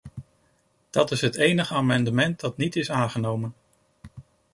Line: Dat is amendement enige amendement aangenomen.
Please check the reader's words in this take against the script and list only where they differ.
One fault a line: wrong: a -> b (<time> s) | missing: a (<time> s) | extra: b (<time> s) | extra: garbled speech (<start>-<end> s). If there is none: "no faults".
wrong: amendement -> het (1.2 s)
extra: dat niet is (2.4 s)